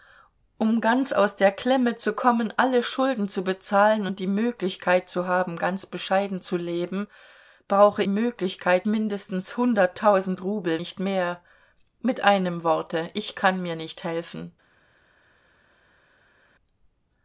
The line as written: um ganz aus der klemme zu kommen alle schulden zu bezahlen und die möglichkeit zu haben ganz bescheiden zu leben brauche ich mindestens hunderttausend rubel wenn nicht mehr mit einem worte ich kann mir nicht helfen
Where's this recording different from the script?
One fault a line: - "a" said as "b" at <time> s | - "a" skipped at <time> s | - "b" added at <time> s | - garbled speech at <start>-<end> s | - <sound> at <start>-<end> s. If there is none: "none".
- "ich" said as "möglichkeit" at 8.1 s
- "wenn" skipped at 10.8 s